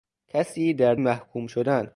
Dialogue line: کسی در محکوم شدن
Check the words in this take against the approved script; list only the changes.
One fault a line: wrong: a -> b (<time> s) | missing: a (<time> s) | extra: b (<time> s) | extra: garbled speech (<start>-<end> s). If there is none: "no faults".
no faults